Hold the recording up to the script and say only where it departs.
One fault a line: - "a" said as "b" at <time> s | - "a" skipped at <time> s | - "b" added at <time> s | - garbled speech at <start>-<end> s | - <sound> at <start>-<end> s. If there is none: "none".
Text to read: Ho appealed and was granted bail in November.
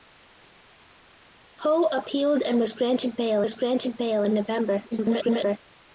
- "was granted bail" added at 3.4 s
- garbled speech at 4.9-5.6 s